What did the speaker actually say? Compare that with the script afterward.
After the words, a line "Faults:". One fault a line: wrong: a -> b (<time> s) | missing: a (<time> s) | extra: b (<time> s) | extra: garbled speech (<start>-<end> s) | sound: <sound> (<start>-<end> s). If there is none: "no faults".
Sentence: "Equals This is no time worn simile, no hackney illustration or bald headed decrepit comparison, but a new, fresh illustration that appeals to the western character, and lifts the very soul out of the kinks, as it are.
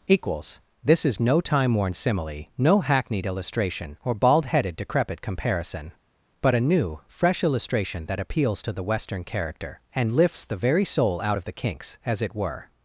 "Equals This is no time worn simile, no hackneyed illustration or bald headed decrepit comparison, but a new, fresh illustration that appeals to the western character, and lifts the very soul out of the kinks, as it were.
Faults:
wrong: hackney -> hackneyed (2.8 s)
wrong: are -> were (12.3 s)